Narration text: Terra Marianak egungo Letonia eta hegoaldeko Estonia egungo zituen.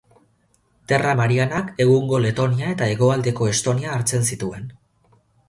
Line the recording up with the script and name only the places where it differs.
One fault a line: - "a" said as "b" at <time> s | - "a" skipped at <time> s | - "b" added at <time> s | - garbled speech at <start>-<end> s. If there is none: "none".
- "egungo" said as "hartzen" at 4.0 s